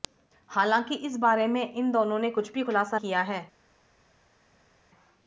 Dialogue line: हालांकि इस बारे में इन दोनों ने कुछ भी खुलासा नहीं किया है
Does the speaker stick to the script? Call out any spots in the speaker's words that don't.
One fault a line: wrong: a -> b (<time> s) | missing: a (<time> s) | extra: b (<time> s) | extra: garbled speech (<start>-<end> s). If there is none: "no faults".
missing: नहीं (3.0 s)